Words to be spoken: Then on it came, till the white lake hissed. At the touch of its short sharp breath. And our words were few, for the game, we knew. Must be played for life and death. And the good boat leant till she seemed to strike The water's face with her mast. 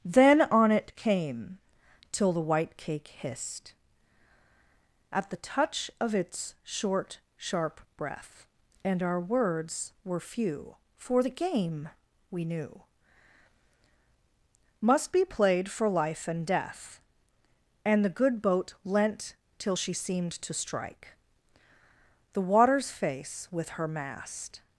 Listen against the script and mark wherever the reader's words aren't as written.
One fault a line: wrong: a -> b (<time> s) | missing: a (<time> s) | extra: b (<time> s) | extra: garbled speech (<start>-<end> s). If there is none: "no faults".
wrong: lake -> cake (2.8 s)